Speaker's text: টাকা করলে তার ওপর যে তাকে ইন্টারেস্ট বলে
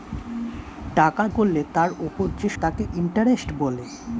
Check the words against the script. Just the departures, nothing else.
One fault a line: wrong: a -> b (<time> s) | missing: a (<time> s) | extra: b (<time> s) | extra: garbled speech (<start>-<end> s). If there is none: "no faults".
no faults